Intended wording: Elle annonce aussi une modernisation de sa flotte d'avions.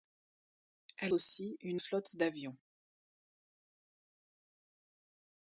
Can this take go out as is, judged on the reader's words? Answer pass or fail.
fail